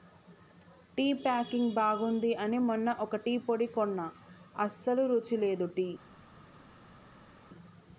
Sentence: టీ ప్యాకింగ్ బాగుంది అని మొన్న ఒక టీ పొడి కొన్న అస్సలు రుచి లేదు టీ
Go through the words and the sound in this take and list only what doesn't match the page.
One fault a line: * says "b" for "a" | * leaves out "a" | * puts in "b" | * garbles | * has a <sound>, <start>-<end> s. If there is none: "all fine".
all fine